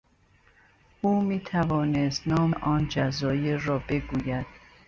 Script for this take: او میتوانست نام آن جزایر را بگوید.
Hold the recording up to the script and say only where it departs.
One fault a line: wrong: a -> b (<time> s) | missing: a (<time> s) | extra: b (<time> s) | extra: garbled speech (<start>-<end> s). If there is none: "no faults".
no faults